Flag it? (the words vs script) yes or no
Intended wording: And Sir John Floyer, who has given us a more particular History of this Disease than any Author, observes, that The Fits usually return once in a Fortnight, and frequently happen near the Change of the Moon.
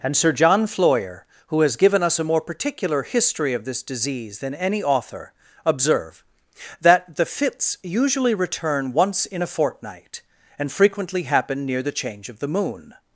yes